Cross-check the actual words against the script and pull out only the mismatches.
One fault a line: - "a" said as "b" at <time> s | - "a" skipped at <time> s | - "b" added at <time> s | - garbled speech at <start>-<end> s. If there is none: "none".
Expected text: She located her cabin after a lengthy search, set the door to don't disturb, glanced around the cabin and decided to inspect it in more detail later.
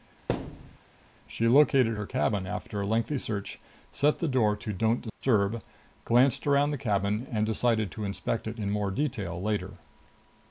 none